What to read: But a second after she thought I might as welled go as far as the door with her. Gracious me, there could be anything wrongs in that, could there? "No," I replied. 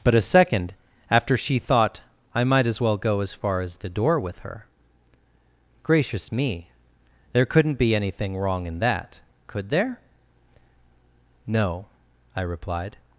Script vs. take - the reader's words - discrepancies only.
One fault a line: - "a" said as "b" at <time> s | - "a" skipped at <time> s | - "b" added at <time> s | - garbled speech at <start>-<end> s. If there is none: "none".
- "welled" said as "well" at 2.8 s
- "could" said as "couldn't" at 7.5 s
- "wrongs" said as "wrong" at 8.4 s